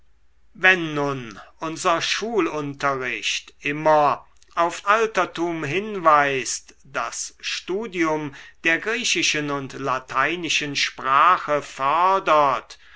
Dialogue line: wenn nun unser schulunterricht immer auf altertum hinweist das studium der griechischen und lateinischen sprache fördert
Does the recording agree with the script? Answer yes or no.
yes